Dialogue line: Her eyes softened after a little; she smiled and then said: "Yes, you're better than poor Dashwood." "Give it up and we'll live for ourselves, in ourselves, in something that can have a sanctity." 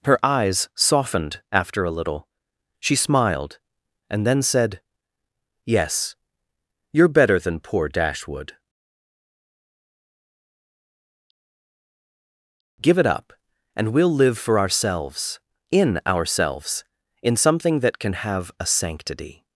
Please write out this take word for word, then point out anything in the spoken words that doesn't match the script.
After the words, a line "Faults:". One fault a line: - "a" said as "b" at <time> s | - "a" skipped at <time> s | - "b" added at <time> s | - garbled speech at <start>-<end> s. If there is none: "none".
Her eyes softened after a little; she smiled and then said: "Yes, you're better than poor Dashwood." "Give it up and we'll live for ourselves, in ourselves, in something that can have a sanctity."
Faults:
none